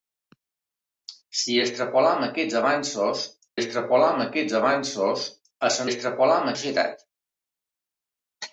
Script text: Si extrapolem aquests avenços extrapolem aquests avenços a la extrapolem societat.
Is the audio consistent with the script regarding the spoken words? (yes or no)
yes